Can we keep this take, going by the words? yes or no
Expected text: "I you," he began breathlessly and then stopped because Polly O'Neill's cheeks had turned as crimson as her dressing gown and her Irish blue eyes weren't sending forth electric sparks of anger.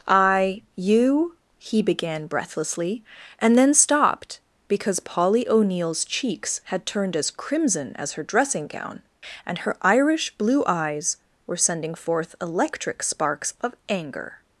no